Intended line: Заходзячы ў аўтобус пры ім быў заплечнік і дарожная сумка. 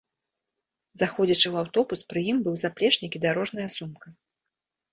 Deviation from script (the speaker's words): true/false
false